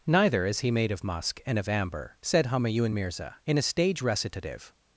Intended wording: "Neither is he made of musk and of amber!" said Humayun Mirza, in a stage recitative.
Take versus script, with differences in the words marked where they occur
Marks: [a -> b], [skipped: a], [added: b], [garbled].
"Neither is he made of musk and of amber!" said Humayun Mirza, in a stage recitative.